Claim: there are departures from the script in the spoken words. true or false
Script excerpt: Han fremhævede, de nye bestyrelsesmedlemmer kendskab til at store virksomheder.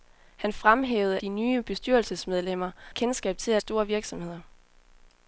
false